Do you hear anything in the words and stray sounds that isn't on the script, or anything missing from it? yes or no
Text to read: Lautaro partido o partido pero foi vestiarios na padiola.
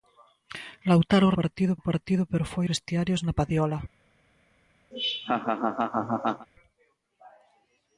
yes